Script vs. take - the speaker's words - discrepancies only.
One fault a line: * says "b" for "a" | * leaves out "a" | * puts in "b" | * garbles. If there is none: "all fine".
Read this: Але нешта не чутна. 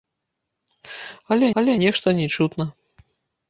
* puts in "але"